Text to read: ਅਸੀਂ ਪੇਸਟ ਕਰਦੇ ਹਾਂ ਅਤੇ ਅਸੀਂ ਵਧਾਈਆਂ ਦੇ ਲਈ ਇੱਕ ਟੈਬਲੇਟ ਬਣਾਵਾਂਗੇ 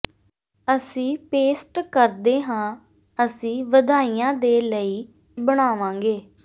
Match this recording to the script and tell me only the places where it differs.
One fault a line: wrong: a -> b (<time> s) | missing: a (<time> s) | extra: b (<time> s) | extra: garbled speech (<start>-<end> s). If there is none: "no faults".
missing: ਅਤੇ (2.8 s)
missing: ਇੱਕ ਟੈਬਲੇਟ (5.1 s)